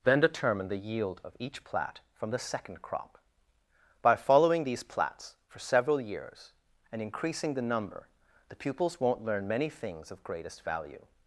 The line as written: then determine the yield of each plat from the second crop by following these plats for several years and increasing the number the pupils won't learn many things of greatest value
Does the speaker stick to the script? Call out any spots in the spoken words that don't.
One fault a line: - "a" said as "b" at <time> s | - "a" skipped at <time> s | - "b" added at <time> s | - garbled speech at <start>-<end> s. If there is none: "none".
none